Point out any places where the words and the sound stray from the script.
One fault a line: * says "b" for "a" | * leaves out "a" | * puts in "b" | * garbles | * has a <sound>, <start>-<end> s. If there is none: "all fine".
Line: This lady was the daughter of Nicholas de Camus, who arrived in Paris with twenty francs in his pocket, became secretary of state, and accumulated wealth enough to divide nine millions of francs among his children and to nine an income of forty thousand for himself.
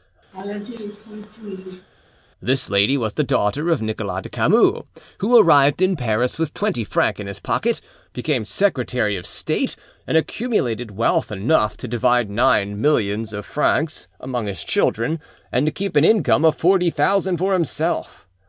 * has a laugh, 0.3-1.9 s
* says "keep" for "nine"